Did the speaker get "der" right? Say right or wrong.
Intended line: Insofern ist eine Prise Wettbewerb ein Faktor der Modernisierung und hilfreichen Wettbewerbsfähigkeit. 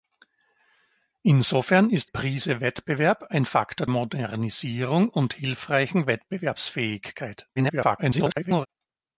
wrong